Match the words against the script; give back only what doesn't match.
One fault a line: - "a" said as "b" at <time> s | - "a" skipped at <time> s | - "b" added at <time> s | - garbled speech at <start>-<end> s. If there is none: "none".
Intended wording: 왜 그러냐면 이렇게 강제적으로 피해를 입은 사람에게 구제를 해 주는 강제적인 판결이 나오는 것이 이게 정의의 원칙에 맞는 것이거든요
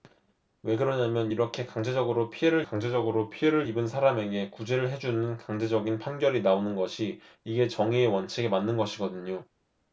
- "강제적으로 피해를" added at 2.6 s